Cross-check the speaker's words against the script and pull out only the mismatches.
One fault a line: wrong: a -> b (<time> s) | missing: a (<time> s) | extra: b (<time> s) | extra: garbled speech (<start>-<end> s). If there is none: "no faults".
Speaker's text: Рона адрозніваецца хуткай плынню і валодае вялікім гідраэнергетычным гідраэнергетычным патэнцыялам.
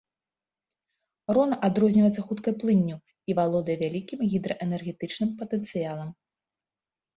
missing: гідраэнергетычным (5.3 s)